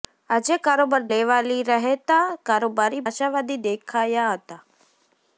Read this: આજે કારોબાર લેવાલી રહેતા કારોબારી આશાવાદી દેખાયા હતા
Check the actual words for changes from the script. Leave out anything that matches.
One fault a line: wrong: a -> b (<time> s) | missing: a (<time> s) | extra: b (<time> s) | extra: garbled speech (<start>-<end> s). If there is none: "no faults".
no faults